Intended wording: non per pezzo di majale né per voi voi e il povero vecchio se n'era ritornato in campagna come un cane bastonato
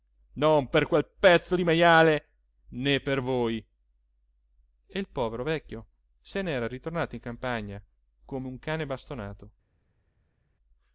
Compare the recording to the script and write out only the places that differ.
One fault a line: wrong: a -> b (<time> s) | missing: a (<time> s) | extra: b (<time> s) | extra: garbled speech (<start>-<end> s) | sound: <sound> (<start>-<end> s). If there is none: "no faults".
extra: quel (0.9 s)
missing: voi (3.6 s)